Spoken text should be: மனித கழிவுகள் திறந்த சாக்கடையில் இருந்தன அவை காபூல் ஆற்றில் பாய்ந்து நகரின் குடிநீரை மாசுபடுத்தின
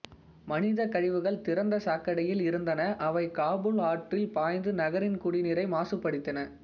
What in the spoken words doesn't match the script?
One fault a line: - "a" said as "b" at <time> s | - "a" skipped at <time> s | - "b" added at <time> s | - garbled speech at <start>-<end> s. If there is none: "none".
none